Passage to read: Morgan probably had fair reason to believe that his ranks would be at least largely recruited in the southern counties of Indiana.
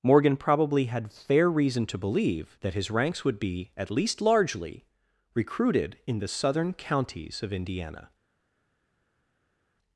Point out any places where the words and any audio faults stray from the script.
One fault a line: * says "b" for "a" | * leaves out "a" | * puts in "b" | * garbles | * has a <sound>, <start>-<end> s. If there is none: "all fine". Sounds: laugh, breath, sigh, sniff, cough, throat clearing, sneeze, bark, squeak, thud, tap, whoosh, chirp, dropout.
all fine